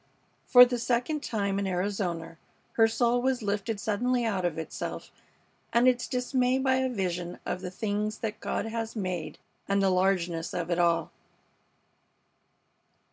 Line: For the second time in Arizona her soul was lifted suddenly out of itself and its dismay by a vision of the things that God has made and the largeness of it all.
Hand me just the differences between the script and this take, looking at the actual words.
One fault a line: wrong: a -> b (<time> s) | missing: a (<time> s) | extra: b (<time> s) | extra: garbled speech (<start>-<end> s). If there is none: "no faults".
no faults